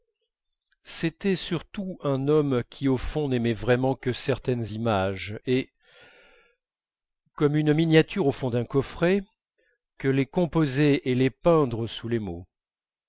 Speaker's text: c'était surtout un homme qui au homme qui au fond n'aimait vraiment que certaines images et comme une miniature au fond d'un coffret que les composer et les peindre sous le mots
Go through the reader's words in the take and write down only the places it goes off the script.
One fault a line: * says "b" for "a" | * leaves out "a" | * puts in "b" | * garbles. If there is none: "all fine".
* leaves out "homme qui au"
* says "les" for "le"